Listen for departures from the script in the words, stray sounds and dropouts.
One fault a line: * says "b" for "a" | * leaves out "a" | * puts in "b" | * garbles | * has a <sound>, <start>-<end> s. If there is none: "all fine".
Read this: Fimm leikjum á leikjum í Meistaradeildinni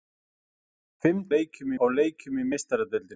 all fine